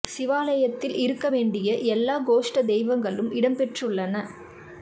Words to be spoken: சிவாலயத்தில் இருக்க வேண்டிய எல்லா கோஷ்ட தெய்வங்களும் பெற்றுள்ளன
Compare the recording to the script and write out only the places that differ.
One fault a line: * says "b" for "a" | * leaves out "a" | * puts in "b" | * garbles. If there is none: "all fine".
* puts in "இடம்"